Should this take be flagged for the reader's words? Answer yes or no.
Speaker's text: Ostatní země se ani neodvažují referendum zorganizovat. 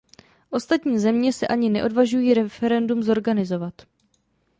no